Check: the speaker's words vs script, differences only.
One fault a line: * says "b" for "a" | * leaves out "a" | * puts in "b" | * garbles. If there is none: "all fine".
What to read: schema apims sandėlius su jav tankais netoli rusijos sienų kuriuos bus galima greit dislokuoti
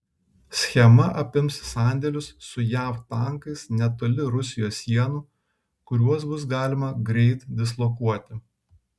all fine